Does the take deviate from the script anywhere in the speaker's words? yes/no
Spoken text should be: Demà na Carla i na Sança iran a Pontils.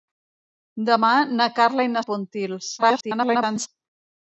yes